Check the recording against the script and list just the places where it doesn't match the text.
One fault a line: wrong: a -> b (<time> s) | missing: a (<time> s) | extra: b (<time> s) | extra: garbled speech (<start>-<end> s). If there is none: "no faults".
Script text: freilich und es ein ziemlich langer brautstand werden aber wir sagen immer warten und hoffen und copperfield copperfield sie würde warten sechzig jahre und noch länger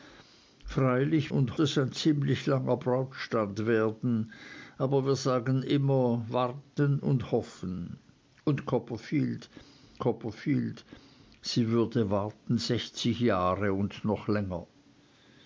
no faults